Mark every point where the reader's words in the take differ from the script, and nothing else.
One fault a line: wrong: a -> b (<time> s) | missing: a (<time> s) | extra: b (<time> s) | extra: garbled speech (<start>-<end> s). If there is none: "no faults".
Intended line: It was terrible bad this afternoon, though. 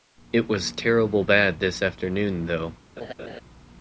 no faults